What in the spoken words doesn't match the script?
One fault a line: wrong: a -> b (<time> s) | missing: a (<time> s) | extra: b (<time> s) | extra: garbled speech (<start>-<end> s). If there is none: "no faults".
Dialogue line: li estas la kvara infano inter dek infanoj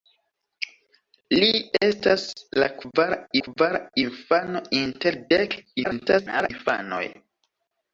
extra: kvara (3.4 s)
extra: garbled speech (5.8-6.5 s)